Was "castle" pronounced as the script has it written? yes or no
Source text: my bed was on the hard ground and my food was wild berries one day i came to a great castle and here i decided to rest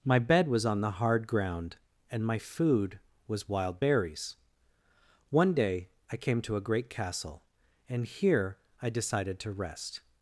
yes